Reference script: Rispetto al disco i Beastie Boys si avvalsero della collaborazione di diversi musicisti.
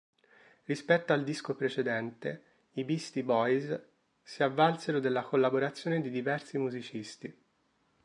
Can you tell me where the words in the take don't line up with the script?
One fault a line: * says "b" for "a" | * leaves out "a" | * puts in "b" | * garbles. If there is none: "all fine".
* puts in "precedente"